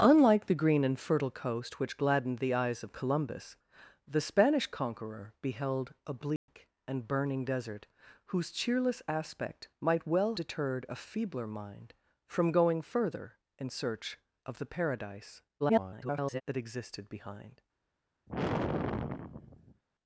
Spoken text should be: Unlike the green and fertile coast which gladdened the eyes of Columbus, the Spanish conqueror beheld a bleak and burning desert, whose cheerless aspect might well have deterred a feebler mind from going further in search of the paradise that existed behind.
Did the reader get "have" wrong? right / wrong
wrong